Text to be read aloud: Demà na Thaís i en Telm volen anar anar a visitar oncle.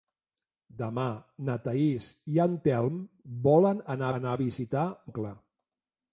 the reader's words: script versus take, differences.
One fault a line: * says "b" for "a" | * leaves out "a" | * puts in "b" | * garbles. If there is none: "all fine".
all fine